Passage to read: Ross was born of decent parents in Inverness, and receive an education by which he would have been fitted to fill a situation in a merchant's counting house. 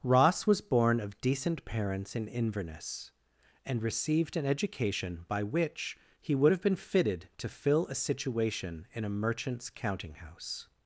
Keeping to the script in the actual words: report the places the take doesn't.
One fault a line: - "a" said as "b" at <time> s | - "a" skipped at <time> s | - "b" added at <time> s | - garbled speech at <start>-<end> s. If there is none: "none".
- "receive" said as "received" at 3.8 s